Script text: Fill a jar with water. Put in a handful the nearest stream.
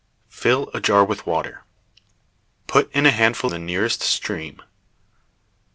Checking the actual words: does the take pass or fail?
pass